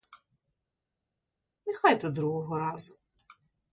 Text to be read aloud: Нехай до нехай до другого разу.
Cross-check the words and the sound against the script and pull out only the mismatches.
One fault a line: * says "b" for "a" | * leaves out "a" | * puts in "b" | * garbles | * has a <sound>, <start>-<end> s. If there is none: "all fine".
* leaves out "нехай до"